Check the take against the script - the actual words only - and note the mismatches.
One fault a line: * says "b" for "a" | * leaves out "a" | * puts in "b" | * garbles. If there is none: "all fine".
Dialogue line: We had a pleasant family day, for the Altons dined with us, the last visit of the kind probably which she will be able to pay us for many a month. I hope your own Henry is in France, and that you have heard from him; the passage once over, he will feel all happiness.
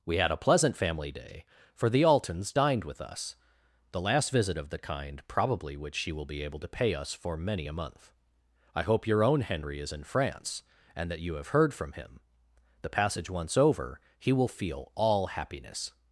all fine